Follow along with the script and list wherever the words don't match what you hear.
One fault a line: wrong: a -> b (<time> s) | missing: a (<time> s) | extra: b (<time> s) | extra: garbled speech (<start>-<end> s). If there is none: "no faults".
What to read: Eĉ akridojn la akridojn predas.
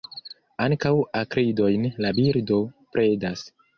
wrong: Eĉ -> Ankaŭ (0.7 s)
wrong: akridojn -> birdo (2.2 s)